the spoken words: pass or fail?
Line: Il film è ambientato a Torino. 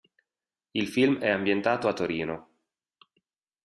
pass